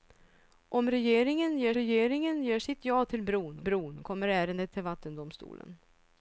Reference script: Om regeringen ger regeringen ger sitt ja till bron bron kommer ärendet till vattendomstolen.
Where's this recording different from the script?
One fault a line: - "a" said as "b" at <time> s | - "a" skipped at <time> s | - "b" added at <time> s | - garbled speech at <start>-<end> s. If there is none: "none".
none